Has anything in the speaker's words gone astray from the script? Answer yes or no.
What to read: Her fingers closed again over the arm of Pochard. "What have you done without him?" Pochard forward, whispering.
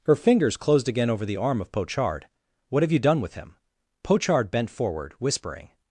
yes